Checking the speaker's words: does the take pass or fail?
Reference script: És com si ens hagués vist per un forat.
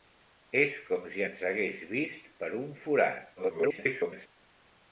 fail